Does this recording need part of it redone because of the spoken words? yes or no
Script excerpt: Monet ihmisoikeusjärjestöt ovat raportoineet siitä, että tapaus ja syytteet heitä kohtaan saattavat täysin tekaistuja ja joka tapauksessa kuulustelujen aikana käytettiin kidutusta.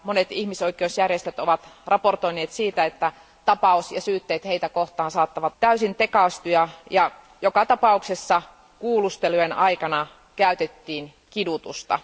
no